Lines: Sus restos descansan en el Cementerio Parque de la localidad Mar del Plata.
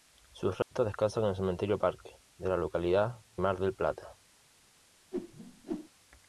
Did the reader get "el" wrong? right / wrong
right